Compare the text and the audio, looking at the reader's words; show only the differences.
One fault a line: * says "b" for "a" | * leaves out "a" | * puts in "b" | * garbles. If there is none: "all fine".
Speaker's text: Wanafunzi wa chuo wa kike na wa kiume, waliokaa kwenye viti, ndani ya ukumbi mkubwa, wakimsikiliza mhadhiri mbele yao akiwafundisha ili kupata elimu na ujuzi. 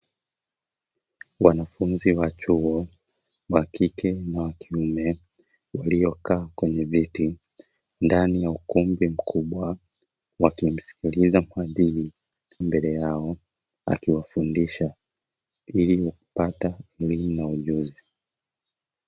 all fine